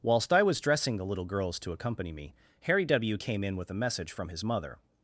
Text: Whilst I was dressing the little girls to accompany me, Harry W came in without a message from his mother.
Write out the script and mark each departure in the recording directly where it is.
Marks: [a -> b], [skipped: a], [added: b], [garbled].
Whilst I was dressing the little girls to accompany me, Harry W came in [without -> with] a message from his mother.